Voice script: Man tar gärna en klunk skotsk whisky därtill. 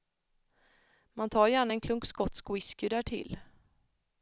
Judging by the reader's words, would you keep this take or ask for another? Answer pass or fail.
pass